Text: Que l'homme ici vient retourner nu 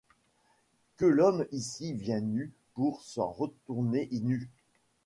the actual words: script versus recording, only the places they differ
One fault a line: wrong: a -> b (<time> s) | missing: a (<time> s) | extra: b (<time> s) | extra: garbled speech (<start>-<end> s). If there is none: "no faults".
extra: nu pour s'en (2.2 s)